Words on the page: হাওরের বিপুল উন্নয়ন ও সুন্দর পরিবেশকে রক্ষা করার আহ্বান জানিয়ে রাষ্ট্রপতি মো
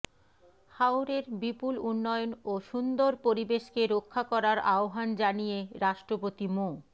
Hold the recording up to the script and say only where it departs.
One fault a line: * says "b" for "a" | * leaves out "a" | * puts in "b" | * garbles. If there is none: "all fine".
all fine